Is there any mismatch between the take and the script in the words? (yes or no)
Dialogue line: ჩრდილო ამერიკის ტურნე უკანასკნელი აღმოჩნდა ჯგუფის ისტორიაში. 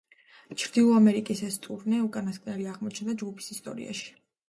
yes